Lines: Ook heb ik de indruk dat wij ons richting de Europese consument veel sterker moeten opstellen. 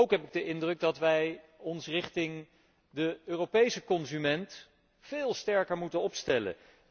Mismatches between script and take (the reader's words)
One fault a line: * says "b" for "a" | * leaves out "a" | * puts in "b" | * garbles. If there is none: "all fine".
all fine